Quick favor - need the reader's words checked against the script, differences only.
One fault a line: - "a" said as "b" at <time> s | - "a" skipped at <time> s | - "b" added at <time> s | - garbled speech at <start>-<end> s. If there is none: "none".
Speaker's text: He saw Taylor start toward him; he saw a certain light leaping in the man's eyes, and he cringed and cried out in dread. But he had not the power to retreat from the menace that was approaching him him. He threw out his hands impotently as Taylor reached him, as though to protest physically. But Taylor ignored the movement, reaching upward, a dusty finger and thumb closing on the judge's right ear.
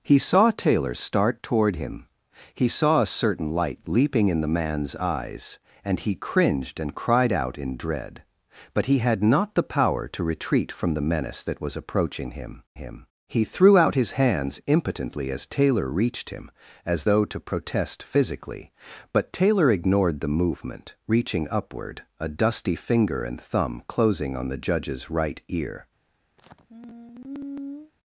none